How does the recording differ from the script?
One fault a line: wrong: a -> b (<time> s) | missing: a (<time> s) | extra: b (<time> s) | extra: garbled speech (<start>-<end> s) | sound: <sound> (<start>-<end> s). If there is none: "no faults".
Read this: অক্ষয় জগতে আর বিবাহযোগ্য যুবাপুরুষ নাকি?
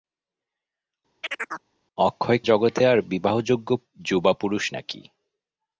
sound: chirp (1.2-1.7 s)